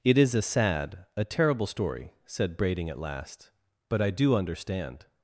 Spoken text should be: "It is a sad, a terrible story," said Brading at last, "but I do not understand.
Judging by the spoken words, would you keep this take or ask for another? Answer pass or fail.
fail